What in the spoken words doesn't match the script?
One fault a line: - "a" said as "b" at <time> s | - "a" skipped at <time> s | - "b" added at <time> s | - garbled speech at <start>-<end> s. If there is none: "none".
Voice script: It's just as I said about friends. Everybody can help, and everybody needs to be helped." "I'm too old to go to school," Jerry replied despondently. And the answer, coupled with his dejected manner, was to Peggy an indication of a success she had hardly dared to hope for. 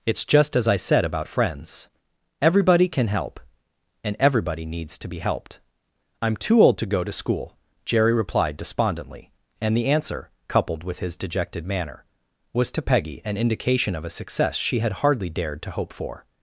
none